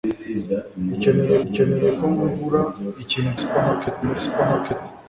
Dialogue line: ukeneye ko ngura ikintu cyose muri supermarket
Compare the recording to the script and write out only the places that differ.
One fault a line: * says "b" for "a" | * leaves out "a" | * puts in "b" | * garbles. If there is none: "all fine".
* puts in "ukeneye"
* says "supermarket" for "cyose"